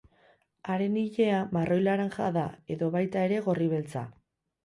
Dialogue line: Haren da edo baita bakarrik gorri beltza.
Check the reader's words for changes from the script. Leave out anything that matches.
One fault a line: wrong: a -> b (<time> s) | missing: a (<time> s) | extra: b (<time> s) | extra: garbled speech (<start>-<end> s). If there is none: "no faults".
extra: ilea marroi laranja (1.0 s)
wrong: bakarrik -> ere (3.3 s)